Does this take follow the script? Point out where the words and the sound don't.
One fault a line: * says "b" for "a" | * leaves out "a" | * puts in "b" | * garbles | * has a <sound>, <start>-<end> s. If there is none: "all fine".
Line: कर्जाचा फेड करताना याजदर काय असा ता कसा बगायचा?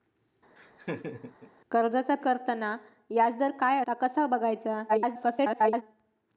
* has a laugh, 0.6-1.5 s
* leaves out "फेड"
* leaves out "असा"
* garbles